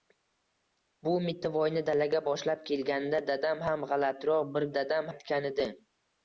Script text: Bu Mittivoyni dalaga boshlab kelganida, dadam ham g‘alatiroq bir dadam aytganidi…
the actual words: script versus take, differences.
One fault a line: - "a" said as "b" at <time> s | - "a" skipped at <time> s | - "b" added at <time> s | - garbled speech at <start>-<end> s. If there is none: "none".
none